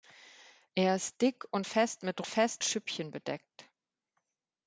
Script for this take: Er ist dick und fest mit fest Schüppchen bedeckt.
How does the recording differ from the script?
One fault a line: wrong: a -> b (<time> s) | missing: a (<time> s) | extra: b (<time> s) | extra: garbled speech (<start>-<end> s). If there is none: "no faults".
no faults